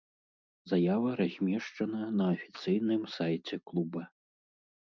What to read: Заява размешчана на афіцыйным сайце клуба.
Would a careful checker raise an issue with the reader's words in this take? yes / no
no